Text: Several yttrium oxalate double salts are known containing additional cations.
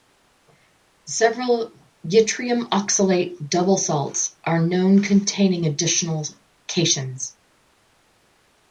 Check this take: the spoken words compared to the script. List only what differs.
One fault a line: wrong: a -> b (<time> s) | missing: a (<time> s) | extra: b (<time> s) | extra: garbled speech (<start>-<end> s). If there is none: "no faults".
no faults